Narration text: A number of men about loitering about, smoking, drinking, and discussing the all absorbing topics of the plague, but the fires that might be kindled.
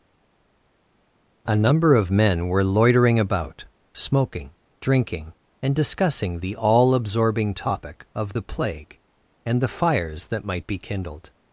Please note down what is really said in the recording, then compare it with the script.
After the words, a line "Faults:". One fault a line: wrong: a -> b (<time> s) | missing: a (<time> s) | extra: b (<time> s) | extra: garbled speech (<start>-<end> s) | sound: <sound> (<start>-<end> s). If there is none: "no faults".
A number of men were loitering about, smoking, drinking, and discussing the all absorbing topic of the plague, and the fires that might be kindled.
Faults:
wrong: about -> were (2.5 s)
wrong: topics -> topic (7.5 s)
wrong: but -> and (9.4 s)